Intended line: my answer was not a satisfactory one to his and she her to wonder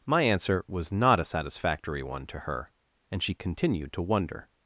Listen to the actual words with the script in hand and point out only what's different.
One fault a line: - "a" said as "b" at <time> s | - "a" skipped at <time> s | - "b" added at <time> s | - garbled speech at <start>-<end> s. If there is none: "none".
- "his" said as "her" at 2.4 s
- "her" said as "continued" at 3.3 s